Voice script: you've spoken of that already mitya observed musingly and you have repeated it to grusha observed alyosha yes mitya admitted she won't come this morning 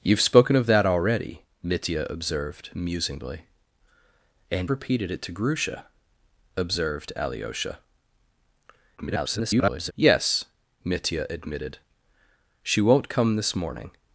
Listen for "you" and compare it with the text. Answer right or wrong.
wrong